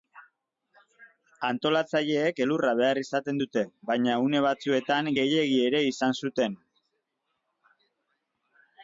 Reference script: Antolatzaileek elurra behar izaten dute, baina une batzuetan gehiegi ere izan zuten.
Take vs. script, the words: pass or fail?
pass